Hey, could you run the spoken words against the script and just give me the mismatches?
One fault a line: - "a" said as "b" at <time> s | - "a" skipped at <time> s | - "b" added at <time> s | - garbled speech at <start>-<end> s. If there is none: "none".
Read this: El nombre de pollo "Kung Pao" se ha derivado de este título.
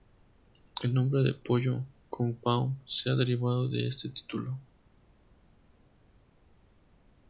none